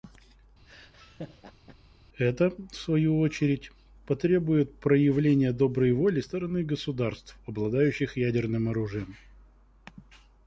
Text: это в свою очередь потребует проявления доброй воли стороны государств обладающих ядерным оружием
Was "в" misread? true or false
false